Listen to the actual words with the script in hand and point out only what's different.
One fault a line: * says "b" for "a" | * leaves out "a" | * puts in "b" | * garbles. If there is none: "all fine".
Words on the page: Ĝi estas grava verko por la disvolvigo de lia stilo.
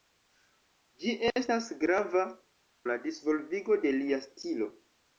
* leaves out "verko por"